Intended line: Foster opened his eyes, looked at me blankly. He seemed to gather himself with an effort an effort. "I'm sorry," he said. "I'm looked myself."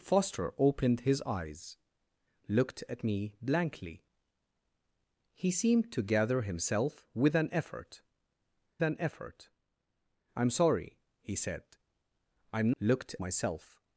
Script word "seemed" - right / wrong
right